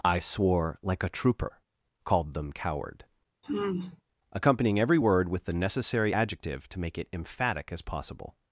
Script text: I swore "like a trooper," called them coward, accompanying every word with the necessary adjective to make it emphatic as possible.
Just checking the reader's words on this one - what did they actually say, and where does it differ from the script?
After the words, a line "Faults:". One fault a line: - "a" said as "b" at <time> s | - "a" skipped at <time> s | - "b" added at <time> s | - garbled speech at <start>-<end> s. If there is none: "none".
I swore "like a trooper," called them coward, accompanying every word with the necessary adjective to make it emphatic as possible.
Faults:
none